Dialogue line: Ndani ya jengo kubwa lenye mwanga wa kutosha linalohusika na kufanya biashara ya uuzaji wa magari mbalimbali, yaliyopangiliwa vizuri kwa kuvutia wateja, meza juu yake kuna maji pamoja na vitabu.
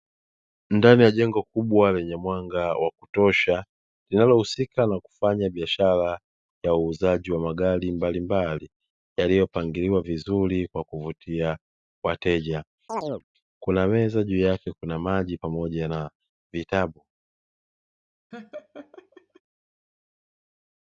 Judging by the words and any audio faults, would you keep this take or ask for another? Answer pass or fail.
fail